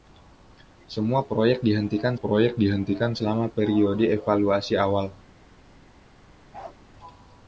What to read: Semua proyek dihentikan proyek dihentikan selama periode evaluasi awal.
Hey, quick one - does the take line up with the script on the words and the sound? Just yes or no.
no